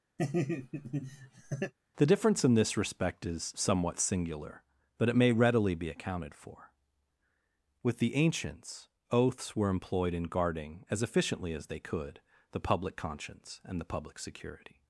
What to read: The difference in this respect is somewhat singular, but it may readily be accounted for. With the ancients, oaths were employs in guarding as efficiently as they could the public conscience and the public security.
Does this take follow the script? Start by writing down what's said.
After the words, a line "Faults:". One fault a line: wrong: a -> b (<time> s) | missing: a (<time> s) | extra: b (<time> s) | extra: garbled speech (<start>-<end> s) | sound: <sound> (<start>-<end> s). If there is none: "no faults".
The difference in this respect is somewhat singular, but it may readily be accounted for. With the ancients, oaths were employed in guarding as efficiently as they could the public conscience and the public security.
Faults:
sound: laugh (0.2-1.7 s)
wrong: employs -> employed (9.7 s)